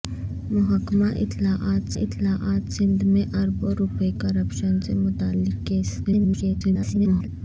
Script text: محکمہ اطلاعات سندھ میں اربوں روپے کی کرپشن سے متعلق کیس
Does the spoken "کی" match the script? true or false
false